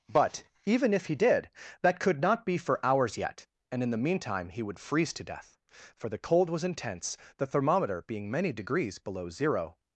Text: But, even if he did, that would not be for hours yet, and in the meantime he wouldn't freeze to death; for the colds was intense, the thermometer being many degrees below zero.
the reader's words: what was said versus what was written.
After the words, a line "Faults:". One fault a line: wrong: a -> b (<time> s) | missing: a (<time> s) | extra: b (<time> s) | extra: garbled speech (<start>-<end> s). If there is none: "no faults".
But, even if he did, that could not be for hours yet, and in the meantime he would freeze to death; for the cold was intense, the thermometer being many degrees below zero.
Faults:
wrong: would -> could (2.0 s)
wrong: wouldn't -> would (4.6 s)
wrong: colds -> cold (6.2 s)